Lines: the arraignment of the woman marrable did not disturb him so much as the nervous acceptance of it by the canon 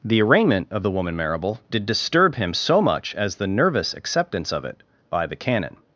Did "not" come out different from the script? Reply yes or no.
yes